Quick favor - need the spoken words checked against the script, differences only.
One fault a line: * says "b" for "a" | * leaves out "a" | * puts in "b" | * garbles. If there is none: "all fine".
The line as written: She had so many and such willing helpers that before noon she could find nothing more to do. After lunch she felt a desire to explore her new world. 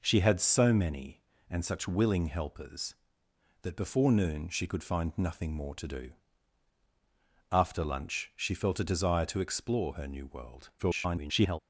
* garbles